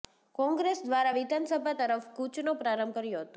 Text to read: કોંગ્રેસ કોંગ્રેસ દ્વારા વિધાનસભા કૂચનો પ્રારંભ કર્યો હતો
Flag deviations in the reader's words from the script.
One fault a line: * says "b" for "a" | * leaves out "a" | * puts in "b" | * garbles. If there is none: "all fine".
* leaves out "કોંગ્રેસ"
* puts in "તરફ"